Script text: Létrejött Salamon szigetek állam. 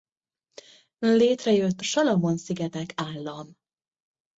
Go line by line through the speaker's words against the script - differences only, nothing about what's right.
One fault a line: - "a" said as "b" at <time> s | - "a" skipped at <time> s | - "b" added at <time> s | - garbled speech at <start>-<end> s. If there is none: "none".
none